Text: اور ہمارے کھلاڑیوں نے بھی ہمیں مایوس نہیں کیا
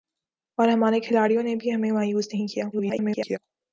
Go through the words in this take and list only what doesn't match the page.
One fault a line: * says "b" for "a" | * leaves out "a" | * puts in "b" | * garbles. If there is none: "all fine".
* garbles